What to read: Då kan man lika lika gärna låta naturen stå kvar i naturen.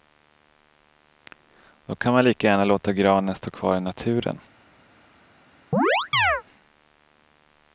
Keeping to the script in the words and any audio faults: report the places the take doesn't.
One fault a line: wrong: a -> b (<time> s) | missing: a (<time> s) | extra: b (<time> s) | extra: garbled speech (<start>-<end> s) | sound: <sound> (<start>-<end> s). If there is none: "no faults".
missing: lika (2.5 s)
wrong: naturen -> granen (2.9 s)
sound: chirp (5.7-6.4 s)